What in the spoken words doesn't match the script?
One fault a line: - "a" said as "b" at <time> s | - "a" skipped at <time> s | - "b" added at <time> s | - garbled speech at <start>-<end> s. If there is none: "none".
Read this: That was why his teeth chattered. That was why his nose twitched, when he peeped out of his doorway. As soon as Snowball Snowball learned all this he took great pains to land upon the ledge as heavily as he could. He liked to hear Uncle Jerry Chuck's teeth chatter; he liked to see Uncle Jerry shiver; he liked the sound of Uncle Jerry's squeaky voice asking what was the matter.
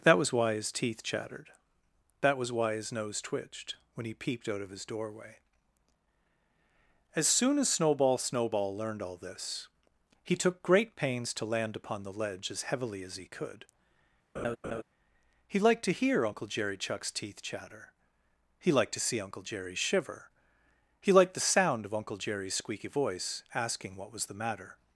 none